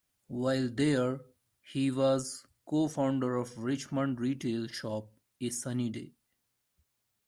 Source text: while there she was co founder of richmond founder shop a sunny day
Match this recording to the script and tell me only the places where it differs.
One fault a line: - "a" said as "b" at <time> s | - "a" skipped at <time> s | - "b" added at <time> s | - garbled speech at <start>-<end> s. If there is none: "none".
- "she" said as "he" at 1.6 s
- "founder" said as "retail" at 4.2 s